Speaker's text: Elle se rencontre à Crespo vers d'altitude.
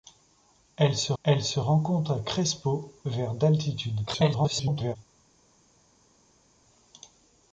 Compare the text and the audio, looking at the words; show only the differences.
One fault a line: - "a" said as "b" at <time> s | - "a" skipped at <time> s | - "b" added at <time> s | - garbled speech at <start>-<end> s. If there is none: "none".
- "elle se" added at 1.2 s
- garbled speech at 4.1-5.0 s